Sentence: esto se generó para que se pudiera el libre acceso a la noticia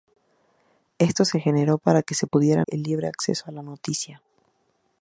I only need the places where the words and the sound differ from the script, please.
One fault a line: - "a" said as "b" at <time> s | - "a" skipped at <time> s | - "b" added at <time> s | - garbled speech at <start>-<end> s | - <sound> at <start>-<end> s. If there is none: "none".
none